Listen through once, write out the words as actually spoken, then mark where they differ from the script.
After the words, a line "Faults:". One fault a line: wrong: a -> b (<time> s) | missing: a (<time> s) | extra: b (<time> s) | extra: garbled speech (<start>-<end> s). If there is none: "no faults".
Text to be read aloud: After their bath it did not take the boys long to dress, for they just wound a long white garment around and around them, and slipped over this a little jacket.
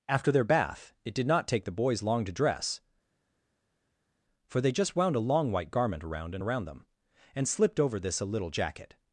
After their bath it did not take the boys long to dress, for they just wound a long white garment around and around them, and slipped over this a little jacket.
Faults:
no faults